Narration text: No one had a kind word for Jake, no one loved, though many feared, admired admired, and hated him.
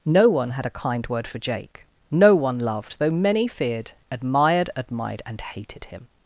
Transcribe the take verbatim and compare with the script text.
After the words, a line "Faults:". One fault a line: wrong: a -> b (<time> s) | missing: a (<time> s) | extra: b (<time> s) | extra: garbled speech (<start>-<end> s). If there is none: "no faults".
No one had a kind word for Jake, no one loved, though many feared, admired admired, and hated him.
Faults:
no faults